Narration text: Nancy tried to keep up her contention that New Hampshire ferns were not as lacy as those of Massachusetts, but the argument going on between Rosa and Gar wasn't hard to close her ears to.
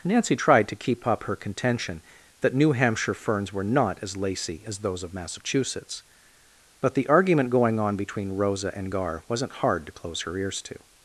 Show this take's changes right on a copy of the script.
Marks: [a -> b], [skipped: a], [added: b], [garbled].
Nancy tried to keep up her contention that New Hampshire ferns were not as lacy as those of Massachusetts, but the argument going on between Rosa and Gar wasn't hard to close her ears to.